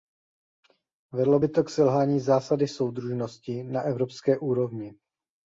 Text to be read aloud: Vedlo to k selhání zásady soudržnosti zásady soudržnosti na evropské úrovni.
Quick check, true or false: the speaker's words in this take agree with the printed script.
false